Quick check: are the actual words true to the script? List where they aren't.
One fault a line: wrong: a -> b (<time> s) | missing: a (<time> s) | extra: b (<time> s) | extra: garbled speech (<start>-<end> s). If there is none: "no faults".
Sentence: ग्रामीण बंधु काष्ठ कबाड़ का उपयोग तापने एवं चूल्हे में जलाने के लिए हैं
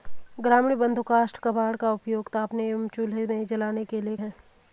no faults